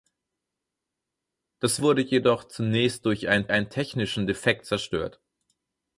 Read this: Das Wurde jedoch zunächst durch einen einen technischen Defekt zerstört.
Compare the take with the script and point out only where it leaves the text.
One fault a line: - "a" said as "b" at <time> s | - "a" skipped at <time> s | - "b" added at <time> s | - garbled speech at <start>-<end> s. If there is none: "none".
none